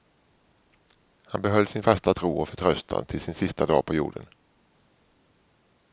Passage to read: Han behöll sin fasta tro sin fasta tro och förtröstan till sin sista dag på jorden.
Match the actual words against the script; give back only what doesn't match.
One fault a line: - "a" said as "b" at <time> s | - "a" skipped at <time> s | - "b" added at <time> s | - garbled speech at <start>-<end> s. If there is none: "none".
- "sin fasta tro" skipped at 2.3 s